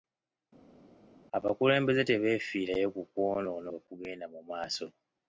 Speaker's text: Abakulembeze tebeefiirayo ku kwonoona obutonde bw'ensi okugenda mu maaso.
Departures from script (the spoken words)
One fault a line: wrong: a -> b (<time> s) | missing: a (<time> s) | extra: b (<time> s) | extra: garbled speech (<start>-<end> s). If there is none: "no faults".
missing: obutonde bw'ensi (3.7 s)